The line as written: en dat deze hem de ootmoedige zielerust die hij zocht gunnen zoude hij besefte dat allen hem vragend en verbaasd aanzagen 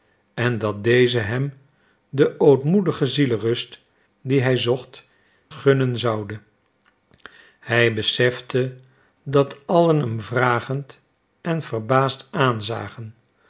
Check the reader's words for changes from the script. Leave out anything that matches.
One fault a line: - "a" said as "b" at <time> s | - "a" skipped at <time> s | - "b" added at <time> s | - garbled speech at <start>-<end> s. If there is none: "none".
none